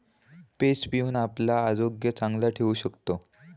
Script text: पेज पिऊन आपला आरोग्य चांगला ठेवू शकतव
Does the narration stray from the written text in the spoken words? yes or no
no